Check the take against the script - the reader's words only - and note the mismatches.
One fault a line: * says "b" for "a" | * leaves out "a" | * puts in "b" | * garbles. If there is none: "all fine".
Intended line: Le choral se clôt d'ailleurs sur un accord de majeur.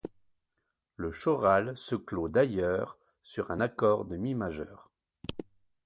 * puts in "mi"